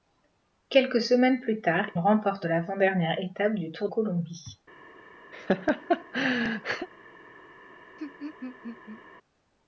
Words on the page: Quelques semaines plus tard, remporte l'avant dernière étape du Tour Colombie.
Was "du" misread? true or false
false